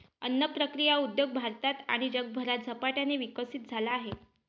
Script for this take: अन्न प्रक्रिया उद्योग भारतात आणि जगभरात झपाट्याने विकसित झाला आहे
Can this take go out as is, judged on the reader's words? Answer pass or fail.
pass